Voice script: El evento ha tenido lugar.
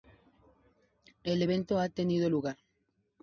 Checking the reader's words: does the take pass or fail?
pass